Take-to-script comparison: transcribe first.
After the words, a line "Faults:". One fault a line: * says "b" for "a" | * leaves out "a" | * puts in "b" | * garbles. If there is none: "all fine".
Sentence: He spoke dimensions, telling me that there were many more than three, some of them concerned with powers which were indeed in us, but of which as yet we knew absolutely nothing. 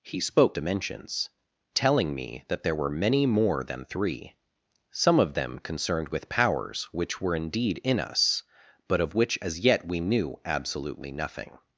He spoke dimensions, telling me that there were many more than three, some of them concerned with powers which were indeed in us, but of which as yet we knew absolutely nothing.
Faults:
all fine